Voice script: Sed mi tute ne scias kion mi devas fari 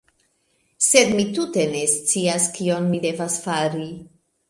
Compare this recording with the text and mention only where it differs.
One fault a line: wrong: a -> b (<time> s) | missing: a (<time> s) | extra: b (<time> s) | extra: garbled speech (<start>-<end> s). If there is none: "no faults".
no faults